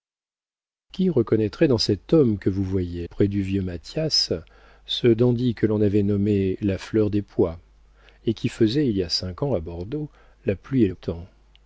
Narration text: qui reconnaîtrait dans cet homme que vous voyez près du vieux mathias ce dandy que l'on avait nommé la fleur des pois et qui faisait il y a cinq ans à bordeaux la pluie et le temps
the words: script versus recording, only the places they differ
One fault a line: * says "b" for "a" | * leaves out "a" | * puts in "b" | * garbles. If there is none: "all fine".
all fine